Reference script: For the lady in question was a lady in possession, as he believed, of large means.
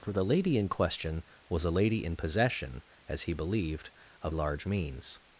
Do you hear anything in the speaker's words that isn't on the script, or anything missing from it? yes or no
no